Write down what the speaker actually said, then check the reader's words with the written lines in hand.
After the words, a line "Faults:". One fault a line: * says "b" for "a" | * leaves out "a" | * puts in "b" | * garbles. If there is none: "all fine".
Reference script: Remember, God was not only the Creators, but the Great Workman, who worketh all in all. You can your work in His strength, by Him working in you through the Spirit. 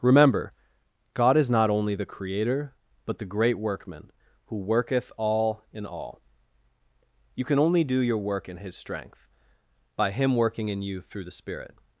Remember, God is not only the Creator, but the Great Workman, who worketh all in all. You can only do your work in His strength, by Him working in you through the Spirit.
Faults:
* says "is" for "was"
* says "Creator" for "Creators"
* puts in "only do"